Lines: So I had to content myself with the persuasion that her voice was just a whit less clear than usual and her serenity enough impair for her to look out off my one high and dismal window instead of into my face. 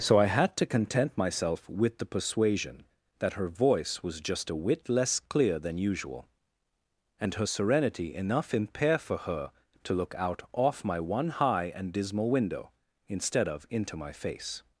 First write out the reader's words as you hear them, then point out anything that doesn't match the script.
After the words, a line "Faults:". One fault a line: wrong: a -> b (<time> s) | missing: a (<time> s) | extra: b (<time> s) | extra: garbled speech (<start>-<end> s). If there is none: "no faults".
So I had to content myself with the persuasion that her voice was just a whit less clear than usual and her serenity enough impair for her to look out off my one high and dismal window instead of into my face.
Faults:
no faults